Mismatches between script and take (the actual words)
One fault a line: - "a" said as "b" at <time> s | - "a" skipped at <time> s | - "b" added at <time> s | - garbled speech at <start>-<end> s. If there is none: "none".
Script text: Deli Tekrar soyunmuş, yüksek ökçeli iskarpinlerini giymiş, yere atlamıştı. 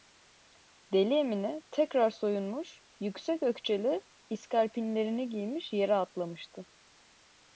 - "Emine" added at 1.1 s